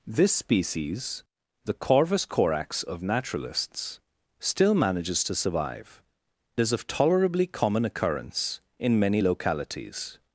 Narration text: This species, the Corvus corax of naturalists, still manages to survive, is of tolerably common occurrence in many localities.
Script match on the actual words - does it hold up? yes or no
yes